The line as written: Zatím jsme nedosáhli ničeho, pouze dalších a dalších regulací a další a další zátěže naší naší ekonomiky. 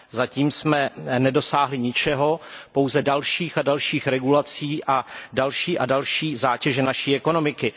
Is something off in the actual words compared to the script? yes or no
yes